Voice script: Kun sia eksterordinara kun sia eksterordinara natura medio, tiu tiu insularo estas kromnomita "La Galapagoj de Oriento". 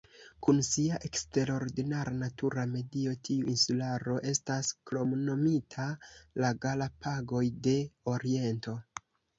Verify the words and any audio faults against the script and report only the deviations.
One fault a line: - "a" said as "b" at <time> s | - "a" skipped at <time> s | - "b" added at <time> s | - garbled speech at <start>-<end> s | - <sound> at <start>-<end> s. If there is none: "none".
- "kun sia eksterordinara" skipped at 2.1 s
- "tiu" skipped at 3.5 s